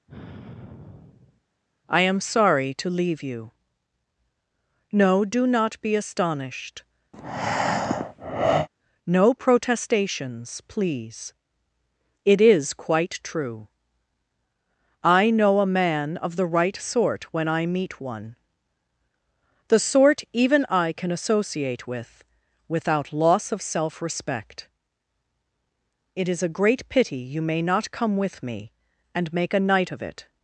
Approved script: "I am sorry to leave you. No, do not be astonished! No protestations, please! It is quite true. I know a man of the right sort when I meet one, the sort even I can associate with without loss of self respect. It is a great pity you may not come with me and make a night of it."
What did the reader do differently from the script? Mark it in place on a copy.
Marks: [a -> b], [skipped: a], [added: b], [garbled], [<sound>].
[sigh] "I am sorry to leave you. No, do not be astonished! [breath] No protestations, please! It is quite true. I know a man of the right sort when I meet one, the sort even I can associate with without loss of self respect. It is a great pity you may not come with me and make a night of it."